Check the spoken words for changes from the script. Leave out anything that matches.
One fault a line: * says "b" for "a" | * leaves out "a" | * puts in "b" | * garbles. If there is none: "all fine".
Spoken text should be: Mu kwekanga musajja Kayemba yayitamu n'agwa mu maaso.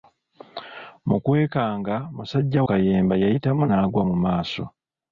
all fine